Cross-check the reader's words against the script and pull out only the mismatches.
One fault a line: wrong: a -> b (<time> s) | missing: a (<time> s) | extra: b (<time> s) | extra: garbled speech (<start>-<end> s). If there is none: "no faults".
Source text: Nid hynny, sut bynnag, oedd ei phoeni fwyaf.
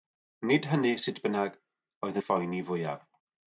no faults